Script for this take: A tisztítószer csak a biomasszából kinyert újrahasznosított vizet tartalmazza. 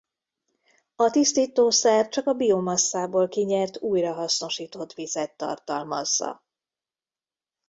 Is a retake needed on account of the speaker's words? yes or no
no